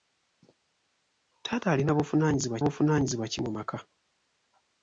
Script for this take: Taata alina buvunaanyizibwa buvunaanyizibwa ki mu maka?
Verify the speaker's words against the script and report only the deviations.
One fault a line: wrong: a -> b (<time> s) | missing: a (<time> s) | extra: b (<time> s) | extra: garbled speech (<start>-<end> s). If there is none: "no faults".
no faults